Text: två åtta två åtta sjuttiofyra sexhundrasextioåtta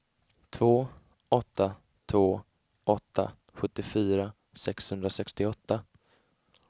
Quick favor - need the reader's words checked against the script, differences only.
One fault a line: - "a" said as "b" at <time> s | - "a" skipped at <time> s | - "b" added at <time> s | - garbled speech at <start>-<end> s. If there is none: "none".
none